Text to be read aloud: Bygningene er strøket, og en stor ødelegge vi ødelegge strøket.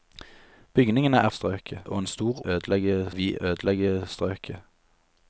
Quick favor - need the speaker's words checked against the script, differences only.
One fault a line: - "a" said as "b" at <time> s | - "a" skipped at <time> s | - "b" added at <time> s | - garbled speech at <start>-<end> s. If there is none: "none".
none